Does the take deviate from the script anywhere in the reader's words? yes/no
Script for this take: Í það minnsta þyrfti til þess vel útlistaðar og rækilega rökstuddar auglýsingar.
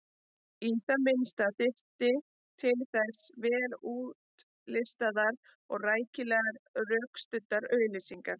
no